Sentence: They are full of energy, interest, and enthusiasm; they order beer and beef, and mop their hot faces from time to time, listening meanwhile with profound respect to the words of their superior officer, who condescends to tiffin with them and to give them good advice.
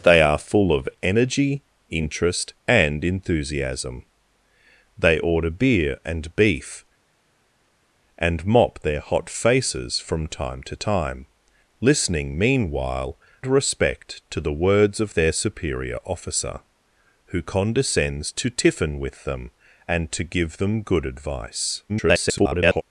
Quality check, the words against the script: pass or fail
fail